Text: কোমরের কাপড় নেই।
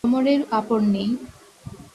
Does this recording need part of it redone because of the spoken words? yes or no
no